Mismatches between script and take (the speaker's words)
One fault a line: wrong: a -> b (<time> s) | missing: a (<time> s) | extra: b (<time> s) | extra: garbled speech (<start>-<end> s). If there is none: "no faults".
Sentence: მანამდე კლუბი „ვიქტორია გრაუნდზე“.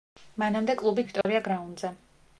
no faults